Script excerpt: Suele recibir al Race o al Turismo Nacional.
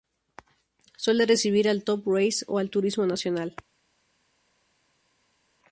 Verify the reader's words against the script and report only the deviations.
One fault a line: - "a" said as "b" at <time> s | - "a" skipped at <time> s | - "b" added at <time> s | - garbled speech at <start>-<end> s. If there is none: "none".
- "Top" added at 1.8 s